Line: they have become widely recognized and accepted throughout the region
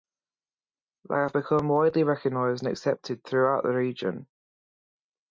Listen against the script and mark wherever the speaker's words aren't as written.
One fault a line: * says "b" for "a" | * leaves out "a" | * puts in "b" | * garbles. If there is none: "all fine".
all fine